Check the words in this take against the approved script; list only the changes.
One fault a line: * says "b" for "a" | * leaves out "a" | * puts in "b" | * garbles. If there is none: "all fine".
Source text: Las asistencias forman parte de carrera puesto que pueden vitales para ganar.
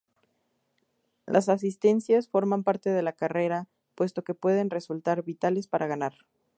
* puts in "la"
* puts in "resultar"